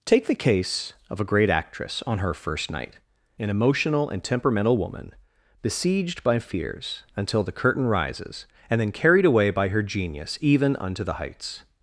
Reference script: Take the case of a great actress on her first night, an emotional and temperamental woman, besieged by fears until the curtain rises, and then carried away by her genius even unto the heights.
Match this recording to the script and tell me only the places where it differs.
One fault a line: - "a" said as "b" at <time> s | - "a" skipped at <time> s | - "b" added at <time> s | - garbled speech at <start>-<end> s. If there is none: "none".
none